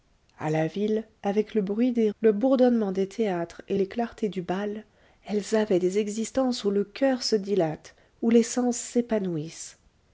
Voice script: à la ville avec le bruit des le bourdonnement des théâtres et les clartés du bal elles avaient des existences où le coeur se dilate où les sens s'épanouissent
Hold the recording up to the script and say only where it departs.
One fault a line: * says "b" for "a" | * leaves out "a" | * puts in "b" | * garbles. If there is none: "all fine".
all fine